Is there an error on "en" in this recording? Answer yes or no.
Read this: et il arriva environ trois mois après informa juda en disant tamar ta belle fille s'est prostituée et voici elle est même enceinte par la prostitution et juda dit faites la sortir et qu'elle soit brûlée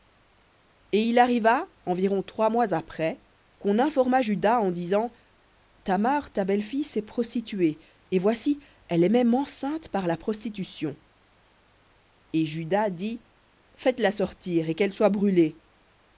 no